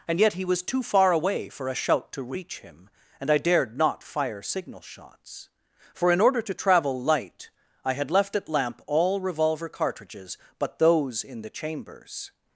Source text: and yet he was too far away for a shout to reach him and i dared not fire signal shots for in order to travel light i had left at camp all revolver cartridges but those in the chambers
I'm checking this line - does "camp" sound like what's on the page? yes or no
no